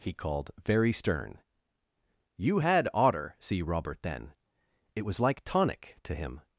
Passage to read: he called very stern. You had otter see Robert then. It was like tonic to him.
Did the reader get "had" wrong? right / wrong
right